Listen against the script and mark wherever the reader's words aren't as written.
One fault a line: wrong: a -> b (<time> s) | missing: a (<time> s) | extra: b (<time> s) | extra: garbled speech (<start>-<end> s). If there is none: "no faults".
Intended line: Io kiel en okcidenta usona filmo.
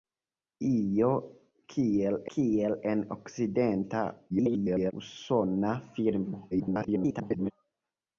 extra: kiel (2.3 s)
extra: garbled speech (4.3-4.9 s)
extra: garbled speech (6.5-7.5 s)